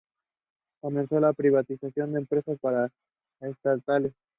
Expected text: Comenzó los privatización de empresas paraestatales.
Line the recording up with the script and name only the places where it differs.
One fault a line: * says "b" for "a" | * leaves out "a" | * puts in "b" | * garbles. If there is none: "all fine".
* says "la" for "los"